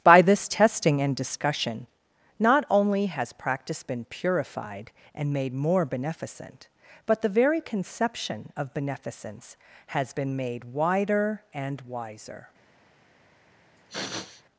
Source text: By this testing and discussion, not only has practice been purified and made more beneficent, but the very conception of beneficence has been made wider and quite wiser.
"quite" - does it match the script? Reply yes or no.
no